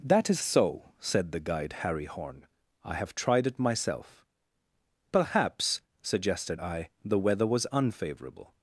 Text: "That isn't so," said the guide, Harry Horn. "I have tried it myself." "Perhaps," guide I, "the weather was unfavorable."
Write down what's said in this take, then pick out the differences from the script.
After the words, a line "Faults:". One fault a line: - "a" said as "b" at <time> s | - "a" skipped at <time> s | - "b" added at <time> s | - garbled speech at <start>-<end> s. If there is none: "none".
"That is so," said the guide, Harry Horn. "I have tried it myself." "Perhaps," suggested I, "the weather was unfavorable."
Faults:
- "isn't" said as "is" at 0.3 s
- "guide" said as "suggested" at 6.0 s